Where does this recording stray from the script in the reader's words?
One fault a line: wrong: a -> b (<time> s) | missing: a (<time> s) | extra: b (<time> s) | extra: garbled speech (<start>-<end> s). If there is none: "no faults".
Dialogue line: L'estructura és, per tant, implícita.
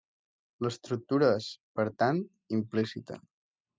no faults